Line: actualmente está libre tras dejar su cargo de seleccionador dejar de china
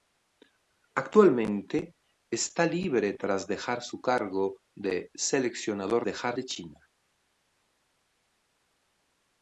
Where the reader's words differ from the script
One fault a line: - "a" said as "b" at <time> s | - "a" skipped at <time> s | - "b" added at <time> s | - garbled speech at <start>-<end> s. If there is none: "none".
none